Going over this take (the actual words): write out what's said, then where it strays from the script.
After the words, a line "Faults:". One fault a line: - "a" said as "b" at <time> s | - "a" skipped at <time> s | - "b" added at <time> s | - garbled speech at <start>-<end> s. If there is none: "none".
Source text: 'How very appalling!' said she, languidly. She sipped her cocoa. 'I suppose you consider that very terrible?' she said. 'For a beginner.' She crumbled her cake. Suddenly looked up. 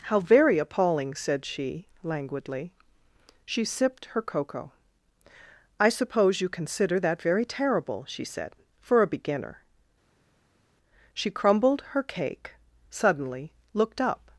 'How very appalling!' said she, languidly. She sipped her cocoa. 'I suppose you consider that very terrible?' she said. 'For a beginner.' She crumbled her cake. Suddenly looked up.
Faults:
none